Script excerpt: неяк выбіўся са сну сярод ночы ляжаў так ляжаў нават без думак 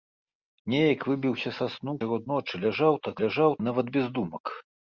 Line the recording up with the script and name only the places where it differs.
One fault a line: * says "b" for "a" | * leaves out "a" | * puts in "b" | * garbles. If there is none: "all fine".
all fine